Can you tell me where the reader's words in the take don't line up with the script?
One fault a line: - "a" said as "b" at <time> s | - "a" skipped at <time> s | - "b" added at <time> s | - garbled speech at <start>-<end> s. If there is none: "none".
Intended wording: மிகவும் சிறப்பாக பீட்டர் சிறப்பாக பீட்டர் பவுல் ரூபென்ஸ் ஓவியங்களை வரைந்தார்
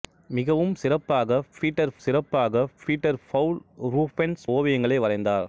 none